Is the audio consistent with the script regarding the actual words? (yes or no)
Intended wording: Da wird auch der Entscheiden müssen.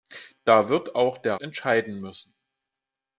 yes